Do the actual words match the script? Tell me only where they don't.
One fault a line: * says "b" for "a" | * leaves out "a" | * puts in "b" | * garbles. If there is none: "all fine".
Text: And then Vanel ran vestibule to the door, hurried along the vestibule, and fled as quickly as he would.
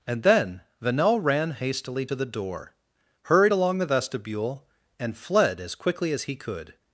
* says "hastily" for "vestibule"
* says "could" for "would"